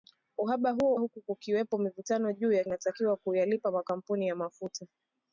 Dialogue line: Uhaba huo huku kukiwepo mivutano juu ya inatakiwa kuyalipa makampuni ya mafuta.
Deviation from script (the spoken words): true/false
false